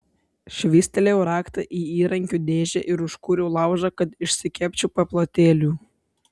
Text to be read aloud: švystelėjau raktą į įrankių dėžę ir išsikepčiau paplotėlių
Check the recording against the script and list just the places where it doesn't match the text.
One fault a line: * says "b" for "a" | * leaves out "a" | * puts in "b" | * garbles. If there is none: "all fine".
* puts in "užkūriau laužą kad"